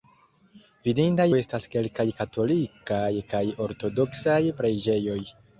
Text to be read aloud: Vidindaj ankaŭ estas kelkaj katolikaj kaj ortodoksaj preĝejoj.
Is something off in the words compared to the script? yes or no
yes